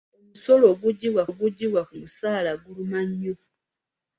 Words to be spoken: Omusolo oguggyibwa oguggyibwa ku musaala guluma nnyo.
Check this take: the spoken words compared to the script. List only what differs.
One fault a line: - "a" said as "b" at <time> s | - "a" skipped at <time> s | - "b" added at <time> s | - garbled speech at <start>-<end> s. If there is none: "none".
none